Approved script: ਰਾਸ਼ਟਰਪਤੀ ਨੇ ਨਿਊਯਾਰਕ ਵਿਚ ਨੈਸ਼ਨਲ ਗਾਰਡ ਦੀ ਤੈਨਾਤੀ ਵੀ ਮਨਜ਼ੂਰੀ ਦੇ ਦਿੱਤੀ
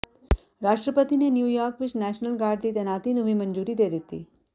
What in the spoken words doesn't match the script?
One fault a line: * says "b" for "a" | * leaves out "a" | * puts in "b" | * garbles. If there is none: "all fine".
* puts in "ਨੂੰ"